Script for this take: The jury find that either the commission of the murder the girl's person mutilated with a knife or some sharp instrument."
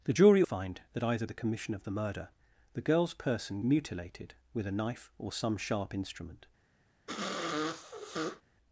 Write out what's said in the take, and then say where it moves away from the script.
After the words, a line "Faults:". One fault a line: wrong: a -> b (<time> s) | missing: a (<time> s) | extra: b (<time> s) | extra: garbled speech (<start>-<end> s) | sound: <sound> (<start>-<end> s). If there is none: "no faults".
The jury find that either the commission of the murder the girl's person mutilated with a knife or some sharp instrument."
Faults:
sound: sniff (7.1-8.4 s)